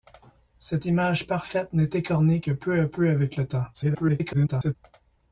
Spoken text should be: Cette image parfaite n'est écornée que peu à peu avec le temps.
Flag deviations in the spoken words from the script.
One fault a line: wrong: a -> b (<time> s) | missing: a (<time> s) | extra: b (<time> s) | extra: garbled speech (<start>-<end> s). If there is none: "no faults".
extra: garbled speech (3.7-4.8 s)